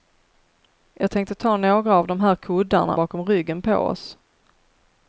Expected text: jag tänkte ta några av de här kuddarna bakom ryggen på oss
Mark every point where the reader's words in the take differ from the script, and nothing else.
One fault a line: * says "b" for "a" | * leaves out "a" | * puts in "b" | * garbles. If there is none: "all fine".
all fine